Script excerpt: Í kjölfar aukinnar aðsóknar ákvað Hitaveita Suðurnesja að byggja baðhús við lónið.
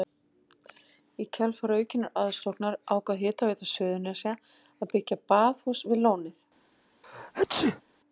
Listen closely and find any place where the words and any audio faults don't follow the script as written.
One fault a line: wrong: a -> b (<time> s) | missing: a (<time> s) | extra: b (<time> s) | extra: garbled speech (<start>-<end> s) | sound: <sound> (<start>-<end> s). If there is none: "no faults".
sound: sneeze (7.0-7.8 s)